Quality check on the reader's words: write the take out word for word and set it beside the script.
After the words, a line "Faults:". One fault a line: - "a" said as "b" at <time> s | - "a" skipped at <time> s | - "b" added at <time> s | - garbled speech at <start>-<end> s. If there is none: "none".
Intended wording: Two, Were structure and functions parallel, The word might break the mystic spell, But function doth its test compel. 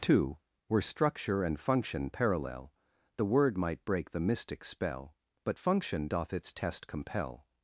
Two, Were structure and function parallel, The word might break the mystic spell, But function doth its test compel.
Faults:
- "functions" said as "function" at 1.6 s